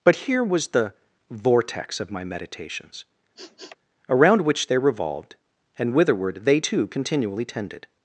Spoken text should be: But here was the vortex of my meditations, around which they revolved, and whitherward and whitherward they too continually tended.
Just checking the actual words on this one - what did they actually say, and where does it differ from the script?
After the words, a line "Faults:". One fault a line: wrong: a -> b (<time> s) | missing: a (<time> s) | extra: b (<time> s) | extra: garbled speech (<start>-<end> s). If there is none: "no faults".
But here was the vortex of my meditations, around which they revolved, and whitherward they too continually tended.
Faults:
missing: and whitherward (6.5 s)